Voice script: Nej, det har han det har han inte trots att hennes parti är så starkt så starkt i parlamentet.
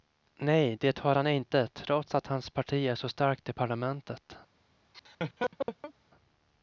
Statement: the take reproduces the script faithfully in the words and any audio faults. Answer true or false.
false